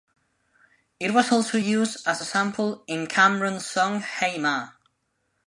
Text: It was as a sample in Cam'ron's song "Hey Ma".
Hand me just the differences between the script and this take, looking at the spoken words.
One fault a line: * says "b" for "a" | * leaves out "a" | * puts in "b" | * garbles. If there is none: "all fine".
* puts in "also used"